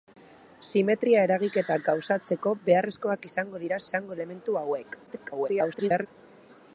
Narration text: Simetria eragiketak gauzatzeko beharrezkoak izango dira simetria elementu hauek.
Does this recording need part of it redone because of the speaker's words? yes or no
yes